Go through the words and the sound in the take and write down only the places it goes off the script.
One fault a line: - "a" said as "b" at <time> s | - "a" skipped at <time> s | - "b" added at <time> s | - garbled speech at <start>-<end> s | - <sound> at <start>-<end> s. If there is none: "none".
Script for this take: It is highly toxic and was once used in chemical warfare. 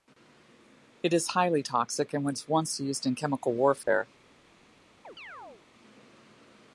- dropout at 3.8-3.9 s
- chirp at 5.0-5.7 s